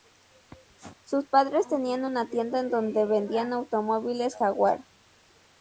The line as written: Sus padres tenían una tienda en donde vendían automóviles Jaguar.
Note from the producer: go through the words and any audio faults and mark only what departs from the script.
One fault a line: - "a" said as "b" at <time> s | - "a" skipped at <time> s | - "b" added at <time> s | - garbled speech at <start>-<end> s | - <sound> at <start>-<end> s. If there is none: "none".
none